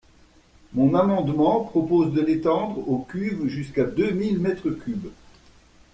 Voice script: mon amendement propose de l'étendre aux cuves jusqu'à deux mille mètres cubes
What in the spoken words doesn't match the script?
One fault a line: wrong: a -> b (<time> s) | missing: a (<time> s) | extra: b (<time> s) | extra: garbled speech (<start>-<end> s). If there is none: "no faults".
no faults